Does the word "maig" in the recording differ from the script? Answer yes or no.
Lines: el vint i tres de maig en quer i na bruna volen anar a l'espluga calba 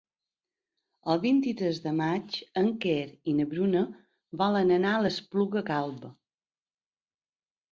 no